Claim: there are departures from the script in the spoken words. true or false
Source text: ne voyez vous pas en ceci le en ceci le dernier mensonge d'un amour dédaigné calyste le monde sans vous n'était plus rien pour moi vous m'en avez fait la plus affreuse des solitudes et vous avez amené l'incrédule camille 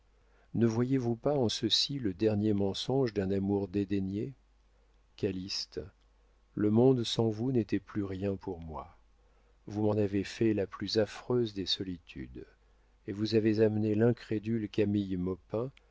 true